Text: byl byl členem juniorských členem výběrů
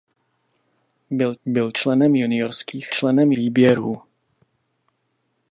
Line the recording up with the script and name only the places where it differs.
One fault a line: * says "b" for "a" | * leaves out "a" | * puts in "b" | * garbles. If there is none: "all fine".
all fine